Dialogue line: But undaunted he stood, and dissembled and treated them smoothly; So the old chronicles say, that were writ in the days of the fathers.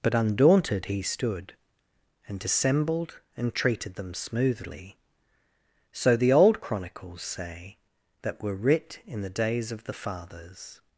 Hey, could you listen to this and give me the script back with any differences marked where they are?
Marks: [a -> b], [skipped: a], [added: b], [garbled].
But undaunted he stood, and dissembled and treated them smoothly; So the old chronicles say, that were writ in the days of the fathers.